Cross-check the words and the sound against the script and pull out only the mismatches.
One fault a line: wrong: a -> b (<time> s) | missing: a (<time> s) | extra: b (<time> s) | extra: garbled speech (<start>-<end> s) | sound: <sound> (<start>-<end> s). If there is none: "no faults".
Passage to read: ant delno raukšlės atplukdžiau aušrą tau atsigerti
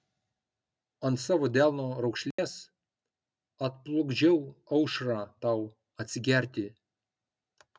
extra: savo (1.2 s)
sound: dropout (2.3-2.4 s)